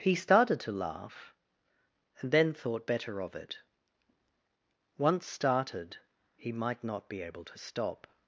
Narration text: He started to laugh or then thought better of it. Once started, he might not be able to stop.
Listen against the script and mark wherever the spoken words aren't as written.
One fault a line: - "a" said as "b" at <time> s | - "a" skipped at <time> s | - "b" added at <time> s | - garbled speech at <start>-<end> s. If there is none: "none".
- "or" said as "and" at 2.2 s